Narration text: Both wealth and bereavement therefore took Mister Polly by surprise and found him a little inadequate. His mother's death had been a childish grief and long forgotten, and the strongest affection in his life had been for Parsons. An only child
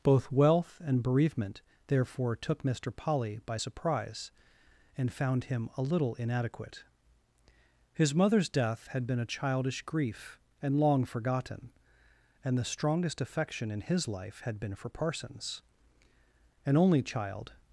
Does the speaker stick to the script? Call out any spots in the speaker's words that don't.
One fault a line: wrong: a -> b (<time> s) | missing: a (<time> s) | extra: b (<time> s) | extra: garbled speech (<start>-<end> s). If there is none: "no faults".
no faults